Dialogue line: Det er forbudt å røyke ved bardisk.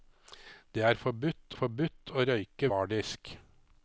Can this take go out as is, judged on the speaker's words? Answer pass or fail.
fail